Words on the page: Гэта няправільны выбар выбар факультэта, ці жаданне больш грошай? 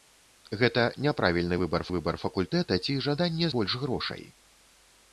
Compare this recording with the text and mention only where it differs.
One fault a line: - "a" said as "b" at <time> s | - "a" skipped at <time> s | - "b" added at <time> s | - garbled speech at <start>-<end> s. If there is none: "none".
none